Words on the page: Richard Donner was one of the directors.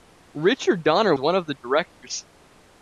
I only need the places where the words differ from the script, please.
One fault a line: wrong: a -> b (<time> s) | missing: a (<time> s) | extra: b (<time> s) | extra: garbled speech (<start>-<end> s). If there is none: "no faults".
missing: was (1.1 s)